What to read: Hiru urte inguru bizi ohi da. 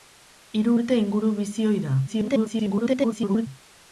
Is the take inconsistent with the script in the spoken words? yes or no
yes